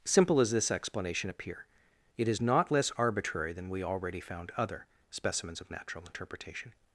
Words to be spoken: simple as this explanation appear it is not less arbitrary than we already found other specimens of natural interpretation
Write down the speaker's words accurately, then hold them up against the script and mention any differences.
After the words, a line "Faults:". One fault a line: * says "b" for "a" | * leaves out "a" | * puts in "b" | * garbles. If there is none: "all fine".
simple as this explanation appear it is not less arbitrary than we already found other specimens of natural interpretation
Faults:
all fine